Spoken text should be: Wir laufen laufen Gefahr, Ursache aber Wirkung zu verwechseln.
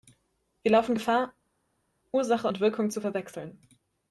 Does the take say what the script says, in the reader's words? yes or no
no